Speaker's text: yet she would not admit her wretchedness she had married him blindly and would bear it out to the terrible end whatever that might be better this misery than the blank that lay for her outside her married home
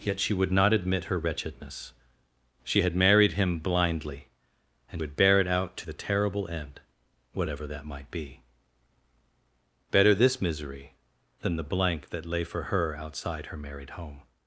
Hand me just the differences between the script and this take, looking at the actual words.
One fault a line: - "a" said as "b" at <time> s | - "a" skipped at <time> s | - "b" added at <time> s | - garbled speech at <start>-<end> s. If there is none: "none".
none